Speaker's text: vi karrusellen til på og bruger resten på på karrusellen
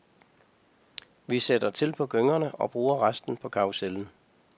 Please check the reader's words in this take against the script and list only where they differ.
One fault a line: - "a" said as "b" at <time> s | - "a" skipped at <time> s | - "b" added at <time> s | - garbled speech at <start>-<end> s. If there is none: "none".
- "karrusellen" said as "sætter" at 1.4 s
- "gyngerne" added at 2.1 s
- "på" skipped at 3.5 s